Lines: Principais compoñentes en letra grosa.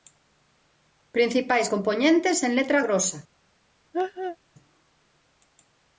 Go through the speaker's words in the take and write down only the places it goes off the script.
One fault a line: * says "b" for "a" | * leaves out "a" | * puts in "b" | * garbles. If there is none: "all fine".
all fine